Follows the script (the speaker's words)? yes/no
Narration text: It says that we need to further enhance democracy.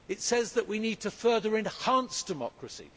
yes